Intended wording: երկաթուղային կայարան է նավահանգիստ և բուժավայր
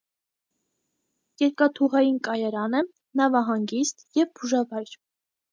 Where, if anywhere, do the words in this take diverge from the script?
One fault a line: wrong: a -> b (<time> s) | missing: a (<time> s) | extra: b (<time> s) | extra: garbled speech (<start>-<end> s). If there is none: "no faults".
no faults